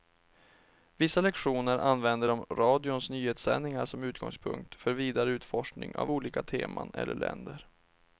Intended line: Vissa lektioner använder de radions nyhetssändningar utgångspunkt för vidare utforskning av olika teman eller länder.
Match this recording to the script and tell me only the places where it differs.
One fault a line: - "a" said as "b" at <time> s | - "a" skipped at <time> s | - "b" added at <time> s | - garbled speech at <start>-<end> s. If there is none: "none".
- "som" added at 3.9 s